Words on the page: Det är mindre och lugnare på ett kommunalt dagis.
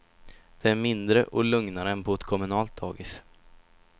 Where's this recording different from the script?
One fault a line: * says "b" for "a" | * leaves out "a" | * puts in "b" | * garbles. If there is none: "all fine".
* puts in "än"